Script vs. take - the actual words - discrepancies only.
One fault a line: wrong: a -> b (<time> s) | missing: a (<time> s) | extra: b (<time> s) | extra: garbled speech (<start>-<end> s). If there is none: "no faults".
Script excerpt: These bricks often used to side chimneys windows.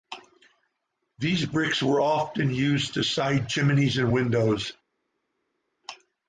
extra: were (1.8 s)
extra: and (4.0 s)